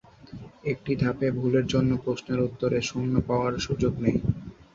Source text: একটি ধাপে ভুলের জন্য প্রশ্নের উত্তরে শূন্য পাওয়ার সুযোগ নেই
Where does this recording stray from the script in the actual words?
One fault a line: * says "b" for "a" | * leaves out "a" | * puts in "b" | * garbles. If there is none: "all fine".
all fine